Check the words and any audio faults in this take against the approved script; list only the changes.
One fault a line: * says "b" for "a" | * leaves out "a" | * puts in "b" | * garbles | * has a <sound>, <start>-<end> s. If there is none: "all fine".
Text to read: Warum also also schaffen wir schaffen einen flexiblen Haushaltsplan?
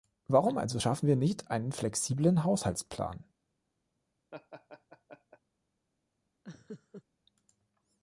* leaves out "also"
* says "nicht" for "schaffen"
* has a laugh, 4.3-5.4 s
* has a laugh, 6.4-7.0 s